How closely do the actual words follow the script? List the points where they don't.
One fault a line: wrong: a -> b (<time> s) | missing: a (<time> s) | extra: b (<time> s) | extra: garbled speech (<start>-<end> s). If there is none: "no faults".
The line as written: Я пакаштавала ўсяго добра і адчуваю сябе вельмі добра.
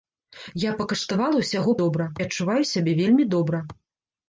no faults